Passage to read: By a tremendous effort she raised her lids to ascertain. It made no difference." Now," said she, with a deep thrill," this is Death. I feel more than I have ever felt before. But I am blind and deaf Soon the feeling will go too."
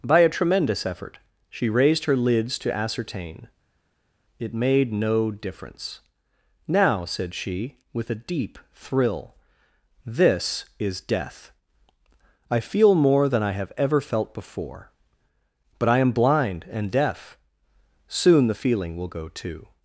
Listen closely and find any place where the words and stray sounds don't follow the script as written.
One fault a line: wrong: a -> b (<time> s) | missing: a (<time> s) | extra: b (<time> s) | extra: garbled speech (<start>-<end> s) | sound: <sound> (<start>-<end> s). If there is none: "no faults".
no faults